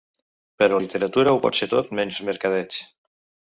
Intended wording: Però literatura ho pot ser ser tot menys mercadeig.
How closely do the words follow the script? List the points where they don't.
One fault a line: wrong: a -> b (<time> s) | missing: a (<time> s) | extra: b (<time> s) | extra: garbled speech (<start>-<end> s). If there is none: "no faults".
missing: ser (1.7 s)